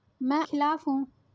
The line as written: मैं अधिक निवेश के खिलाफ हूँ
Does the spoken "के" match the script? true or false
false